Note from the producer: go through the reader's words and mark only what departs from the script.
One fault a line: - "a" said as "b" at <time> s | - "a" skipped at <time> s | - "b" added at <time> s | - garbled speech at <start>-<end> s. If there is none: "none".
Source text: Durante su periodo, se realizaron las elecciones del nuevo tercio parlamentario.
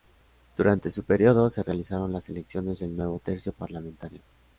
none